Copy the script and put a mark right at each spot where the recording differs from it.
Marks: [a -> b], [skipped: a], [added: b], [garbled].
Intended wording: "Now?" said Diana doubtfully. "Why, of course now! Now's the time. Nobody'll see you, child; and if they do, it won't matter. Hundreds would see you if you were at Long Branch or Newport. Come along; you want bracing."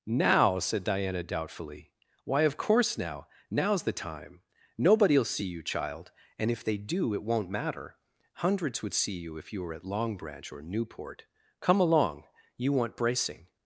"Now?" said Diana doubtfully. "Why, of course now! Now's the time. Nobody'll see you, child; and if they do, it won't matter. Hundreds would see you if you were at Long Branch or Newport. Come along; you want bracing."